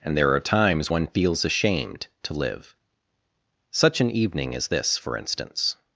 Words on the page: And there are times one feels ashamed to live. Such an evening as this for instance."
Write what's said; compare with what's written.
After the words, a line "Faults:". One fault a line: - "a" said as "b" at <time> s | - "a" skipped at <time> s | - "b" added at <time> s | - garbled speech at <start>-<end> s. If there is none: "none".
And there are times one feels ashamed to live. Such an evening as this for instance."
Faults:
none